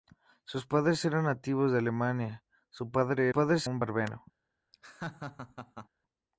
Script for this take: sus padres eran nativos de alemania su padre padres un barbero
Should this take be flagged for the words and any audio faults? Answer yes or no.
yes